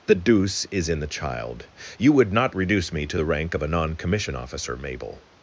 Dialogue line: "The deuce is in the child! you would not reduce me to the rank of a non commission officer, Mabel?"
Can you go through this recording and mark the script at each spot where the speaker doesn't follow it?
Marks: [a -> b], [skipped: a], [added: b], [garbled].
"The deuce is in the child! you would not reduce me to the rank of a non commission officer, Mabel?"